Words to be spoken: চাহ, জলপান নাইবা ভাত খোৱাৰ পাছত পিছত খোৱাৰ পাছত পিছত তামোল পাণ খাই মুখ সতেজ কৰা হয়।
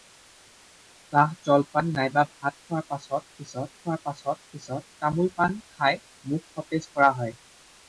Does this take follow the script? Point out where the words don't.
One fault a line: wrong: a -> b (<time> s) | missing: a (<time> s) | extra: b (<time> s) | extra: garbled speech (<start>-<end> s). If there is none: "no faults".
no faults